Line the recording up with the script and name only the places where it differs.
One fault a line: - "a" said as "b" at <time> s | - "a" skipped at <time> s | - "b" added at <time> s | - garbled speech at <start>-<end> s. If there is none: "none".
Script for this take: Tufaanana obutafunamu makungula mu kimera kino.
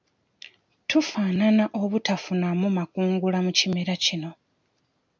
none